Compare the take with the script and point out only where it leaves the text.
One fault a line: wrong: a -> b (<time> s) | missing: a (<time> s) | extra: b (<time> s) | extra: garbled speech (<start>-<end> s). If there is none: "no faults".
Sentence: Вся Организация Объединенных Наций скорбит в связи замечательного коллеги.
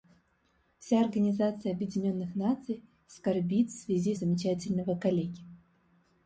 no faults